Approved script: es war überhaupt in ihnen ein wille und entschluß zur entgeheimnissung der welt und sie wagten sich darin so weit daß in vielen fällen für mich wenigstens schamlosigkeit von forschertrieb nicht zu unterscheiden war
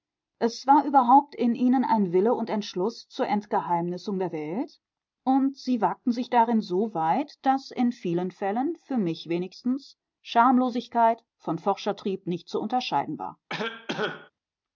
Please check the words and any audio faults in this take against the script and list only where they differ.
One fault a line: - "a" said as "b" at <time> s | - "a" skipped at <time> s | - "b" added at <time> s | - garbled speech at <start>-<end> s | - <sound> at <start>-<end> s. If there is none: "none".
- cough at 13.5-14.3 s